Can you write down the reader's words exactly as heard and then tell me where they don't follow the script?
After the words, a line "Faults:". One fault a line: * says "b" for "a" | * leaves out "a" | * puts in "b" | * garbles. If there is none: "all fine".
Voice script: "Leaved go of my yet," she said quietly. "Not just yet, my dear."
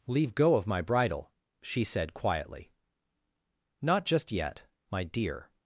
"Leave go of my bridle," she said quietly. "Not just yet, my dear."
Faults:
* says "Leave" for "Leaved"
* says "bridle" for "yet"